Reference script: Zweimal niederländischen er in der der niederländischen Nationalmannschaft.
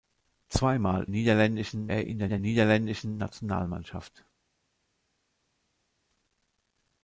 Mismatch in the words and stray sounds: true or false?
false